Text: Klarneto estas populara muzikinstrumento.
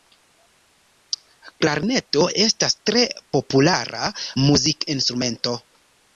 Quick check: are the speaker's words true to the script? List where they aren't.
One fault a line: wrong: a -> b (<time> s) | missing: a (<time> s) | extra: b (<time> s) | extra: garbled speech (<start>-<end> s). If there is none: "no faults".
extra: tre (2.9 s)